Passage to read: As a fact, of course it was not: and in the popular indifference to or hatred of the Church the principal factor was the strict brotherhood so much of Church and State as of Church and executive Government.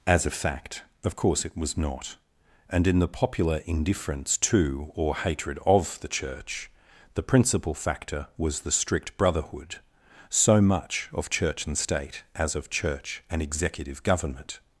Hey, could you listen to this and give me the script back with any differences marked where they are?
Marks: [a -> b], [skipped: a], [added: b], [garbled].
As a fact, of course it was not: and in the popular indifference to or hatred of the Church the principal factor was the strict brotherhood so much of Church and State as of Church and executive Government.